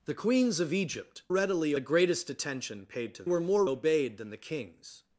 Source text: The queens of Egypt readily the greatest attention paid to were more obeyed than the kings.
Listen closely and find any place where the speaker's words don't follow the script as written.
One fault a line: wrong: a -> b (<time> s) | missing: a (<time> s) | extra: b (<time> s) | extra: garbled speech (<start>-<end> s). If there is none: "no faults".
no faults